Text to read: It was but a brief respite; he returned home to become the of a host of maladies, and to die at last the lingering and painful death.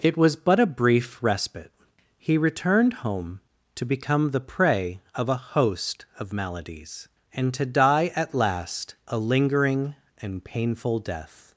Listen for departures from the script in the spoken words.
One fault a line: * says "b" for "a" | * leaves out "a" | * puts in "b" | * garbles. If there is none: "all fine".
* puts in "prey"
* says "a" for "the"